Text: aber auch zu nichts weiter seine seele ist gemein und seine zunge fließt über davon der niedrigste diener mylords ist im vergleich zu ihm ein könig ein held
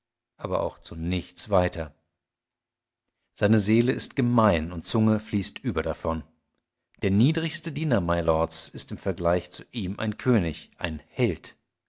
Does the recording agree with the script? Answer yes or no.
no